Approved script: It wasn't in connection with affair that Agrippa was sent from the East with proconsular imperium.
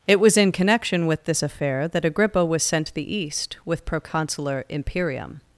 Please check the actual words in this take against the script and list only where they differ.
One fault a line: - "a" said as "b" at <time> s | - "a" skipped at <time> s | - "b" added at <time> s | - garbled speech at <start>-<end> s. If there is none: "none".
- "wasn't" said as "was" at 0.2 s
- "this" added at 1.2 s
- "from" said as "to" at 2.8 s